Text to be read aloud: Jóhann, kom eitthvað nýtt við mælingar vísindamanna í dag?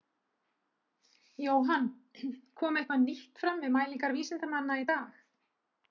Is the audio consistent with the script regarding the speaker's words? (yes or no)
no